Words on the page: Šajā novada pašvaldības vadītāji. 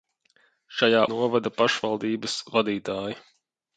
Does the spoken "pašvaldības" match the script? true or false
true